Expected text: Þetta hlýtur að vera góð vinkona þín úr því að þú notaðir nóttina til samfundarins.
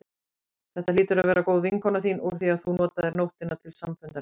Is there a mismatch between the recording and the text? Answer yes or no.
no